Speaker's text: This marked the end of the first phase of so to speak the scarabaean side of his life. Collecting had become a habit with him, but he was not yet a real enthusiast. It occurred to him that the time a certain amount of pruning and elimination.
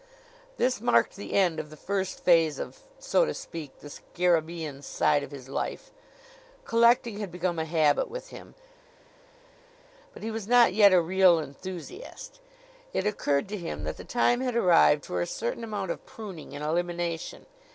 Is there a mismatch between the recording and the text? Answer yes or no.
yes